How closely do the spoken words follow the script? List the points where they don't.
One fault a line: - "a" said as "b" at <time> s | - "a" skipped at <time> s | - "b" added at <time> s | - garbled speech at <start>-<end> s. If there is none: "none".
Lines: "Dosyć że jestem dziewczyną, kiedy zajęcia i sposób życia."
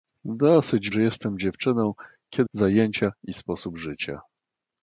none